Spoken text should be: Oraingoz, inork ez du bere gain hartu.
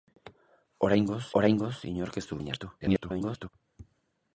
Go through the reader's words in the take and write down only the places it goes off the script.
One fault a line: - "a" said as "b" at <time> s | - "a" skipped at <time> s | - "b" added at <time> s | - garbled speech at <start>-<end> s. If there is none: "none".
- "oraingoz" added at 1.4 s
- "bere" skipped at 2.4 s
- garbled speech at 2.8-3.5 s